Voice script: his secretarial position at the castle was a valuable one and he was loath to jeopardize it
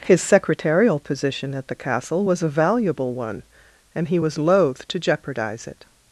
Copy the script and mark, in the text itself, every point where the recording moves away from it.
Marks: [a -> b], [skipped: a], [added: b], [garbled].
his secretarial position at the castle was a valuable one and he was loath to jeopardize it